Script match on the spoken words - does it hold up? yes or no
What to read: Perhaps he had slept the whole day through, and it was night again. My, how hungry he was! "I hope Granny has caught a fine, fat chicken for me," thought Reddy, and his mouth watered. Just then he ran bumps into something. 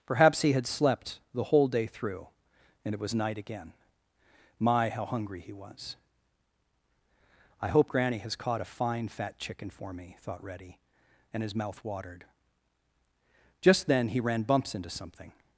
yes